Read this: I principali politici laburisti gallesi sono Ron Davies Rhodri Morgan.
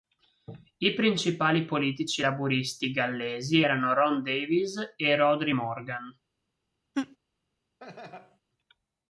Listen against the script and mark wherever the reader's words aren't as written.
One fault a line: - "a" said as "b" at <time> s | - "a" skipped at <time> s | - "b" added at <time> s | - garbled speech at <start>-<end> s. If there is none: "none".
- "sono" said as "erano" at 3.6 s
- "e" added at 4.9 s